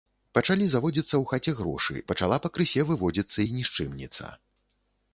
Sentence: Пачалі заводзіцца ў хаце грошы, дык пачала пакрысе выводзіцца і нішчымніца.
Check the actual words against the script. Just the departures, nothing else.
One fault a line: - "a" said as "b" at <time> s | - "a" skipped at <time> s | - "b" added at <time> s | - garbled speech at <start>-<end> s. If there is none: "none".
- "дык" skipped at 1.9 s